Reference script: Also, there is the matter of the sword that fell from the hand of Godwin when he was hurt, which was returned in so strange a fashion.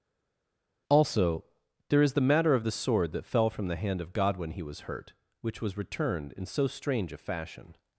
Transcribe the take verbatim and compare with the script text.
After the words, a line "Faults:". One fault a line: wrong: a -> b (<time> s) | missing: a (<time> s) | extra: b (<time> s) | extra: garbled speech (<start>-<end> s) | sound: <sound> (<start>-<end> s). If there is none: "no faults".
Also, there is the matter of the sword that fell from the hand of Godwin he was hurt, which was returned in so strange a fashion.
Faults:
missing: when (4.5 s)